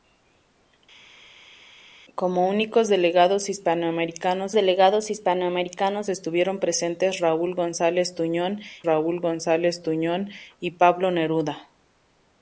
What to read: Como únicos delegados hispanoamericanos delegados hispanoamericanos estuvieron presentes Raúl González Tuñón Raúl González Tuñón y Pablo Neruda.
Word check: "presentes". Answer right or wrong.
right